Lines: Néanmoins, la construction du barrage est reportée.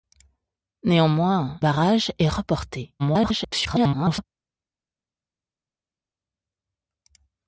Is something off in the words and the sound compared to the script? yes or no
yes